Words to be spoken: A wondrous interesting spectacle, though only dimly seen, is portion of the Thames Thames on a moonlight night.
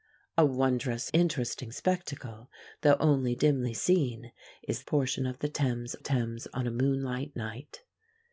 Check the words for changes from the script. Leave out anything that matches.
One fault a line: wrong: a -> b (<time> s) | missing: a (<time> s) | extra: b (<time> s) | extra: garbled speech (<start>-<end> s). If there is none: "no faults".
no faults